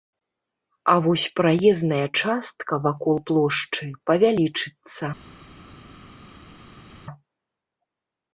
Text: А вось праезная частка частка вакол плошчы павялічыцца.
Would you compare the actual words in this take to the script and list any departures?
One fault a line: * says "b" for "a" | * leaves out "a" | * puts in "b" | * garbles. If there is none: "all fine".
* leaves out "частка"